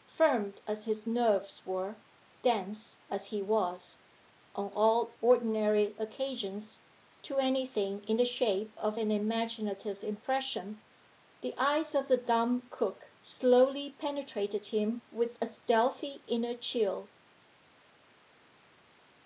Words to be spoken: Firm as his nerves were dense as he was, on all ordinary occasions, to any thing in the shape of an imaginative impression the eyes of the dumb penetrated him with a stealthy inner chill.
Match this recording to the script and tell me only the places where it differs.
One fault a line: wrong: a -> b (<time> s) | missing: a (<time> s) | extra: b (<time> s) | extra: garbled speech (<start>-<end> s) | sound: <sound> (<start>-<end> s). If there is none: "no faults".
extra: cook slowly (12.7 s)